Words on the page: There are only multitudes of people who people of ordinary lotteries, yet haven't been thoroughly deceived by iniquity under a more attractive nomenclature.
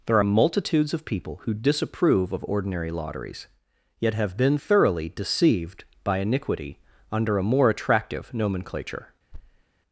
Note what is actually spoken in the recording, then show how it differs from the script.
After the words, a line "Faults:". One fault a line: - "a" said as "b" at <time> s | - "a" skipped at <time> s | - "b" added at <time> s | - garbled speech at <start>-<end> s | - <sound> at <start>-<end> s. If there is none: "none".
There are multitudes of people who disapprove of ordinary lotteries, yet have been thoroughly deceived by iniquity under a more attractive nomenclature.
Faults:
- "only" skipped at 0.2 s
- "people" said as "disapprove" at 1.5 s
- "haven't" said as "have" at 4.1 s
- thud at 9.3-9.6 s